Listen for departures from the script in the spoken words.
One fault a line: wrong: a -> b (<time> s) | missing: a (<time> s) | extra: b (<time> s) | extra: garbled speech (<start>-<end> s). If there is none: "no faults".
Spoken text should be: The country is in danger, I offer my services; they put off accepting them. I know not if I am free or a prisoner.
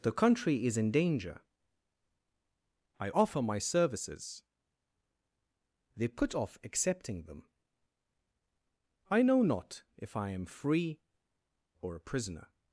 no faults